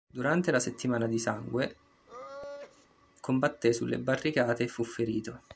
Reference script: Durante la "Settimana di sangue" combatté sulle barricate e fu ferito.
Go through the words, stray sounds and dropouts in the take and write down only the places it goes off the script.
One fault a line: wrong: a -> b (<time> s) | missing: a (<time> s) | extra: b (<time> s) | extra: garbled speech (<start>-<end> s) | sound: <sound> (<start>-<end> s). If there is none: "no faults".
sound: sneeze (2.1-2.9 s)